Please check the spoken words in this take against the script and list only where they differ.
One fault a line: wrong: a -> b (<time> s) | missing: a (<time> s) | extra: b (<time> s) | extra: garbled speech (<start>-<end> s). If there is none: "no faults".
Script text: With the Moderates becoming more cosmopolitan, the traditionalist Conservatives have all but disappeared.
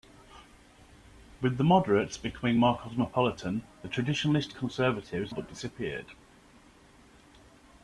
missing: have all (5.3 s)